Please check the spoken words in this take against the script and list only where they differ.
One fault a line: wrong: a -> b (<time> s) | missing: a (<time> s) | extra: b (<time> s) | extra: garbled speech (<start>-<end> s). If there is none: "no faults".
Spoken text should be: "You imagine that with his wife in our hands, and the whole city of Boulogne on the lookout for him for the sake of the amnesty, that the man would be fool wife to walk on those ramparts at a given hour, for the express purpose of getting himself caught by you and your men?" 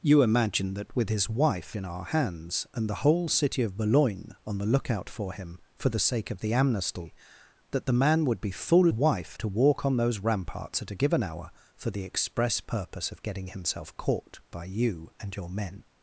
no faults